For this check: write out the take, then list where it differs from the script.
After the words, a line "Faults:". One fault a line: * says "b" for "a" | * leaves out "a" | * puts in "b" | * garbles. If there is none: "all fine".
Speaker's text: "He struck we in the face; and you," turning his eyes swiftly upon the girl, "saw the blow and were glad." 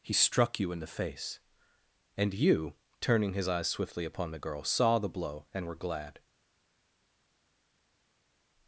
"He struck you in the face; and you," turning his eyes swiftly upon the girl, "saw the blow and were glad."
Faults:
* says "you" for "we"